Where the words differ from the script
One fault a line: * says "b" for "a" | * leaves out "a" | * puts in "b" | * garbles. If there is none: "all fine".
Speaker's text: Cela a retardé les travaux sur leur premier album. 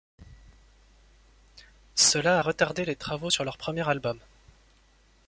all fine